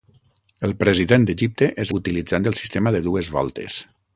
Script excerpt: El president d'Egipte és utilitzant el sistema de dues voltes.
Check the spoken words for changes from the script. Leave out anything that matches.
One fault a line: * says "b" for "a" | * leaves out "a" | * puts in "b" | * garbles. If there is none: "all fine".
all fine